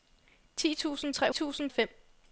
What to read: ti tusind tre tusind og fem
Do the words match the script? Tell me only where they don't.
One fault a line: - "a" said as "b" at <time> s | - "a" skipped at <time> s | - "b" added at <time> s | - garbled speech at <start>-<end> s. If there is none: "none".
none